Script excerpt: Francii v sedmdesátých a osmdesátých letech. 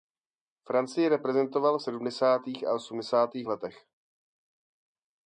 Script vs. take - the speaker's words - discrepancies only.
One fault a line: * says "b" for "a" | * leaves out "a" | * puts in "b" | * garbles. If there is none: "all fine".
* puts in "reprezentoval"